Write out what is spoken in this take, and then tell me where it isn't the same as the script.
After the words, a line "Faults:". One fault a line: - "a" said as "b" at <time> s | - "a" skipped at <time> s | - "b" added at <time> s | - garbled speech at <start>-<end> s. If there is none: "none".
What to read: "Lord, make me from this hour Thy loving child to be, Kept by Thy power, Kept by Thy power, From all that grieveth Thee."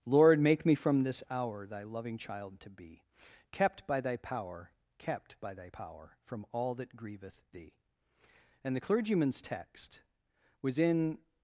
"Lord, make me from this hour Thy loving child to be, Kept by Thy power, Kept by Thy power, From all that grieveth Thee." And the clergyman's text was in
Faults:
- "And the clergyman's text was in" added at 8.6 s